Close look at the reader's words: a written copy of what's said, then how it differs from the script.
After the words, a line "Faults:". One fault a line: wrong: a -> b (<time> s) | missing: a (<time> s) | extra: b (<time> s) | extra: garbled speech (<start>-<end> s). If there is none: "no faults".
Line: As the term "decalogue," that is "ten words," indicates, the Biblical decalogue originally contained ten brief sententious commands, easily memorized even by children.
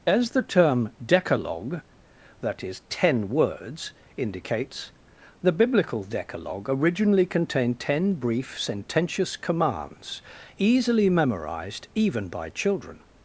As the term "decalogue," that is "ten words," indicates, the Biblical decalogue originally contained ten brief sententious commands, easily memorized even by children.
Faults:
no faults